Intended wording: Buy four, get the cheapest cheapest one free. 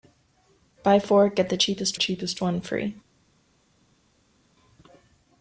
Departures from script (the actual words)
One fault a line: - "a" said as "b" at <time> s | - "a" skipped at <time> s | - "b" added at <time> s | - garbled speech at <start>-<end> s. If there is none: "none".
none